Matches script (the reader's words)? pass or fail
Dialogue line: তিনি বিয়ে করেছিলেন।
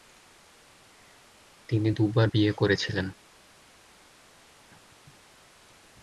fail